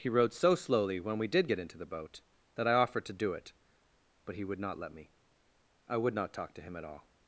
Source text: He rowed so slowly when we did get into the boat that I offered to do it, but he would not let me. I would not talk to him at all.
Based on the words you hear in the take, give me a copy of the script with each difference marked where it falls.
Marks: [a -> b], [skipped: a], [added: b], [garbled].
He rowed so slowly when we did get into the boat that I offered to do it, but he would not let me. I would not talk to him at all.